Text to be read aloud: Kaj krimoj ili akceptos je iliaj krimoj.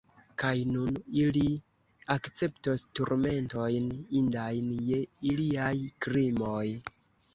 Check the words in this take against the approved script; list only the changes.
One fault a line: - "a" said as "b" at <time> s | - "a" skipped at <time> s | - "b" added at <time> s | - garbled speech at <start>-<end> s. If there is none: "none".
- "krimoj" said as "nun" at 0.8 s
- "turmentojn indajn" added at 3.0 s